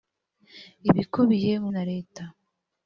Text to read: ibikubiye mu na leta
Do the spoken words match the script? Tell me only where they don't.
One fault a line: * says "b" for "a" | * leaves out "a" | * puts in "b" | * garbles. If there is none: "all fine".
all fine